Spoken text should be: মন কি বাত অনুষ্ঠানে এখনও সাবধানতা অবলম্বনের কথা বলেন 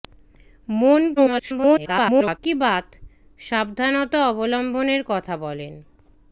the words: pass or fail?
fail